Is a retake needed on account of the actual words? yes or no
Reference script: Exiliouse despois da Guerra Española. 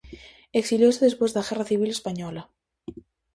yes